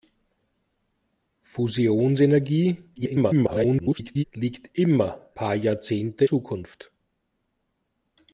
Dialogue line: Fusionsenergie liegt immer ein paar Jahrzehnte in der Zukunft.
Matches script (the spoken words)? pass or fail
fail